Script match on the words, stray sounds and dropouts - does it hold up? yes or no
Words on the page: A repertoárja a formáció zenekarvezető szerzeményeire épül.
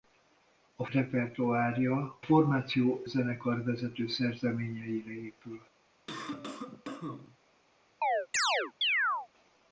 no